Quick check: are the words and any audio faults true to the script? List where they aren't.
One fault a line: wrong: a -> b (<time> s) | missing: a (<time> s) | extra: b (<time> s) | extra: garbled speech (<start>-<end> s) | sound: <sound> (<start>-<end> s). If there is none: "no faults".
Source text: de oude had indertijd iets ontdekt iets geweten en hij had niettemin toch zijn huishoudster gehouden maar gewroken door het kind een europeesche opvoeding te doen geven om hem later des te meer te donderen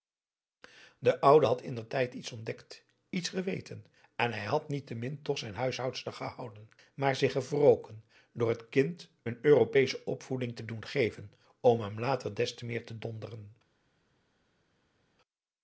extra: zich (7.2 s)